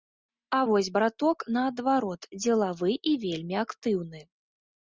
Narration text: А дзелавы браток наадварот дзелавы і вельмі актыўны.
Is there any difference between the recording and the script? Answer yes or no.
yes